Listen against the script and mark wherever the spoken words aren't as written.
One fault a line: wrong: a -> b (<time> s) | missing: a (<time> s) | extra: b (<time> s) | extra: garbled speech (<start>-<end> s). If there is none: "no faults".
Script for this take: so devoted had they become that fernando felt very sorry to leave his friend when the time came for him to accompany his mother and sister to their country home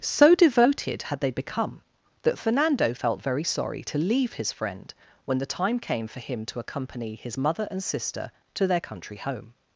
no faults